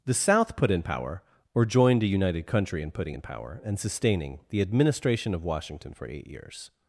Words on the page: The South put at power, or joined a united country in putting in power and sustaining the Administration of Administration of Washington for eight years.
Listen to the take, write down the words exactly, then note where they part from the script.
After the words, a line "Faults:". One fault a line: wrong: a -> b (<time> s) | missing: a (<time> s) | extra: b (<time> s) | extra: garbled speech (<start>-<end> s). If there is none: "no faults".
The South put in power, or joined a united country in putting in power and sustaining the Administration of Washington for eight years.
Faults:
wrong: at -> in (0.7 s)
missing: Administration of (5.4 s)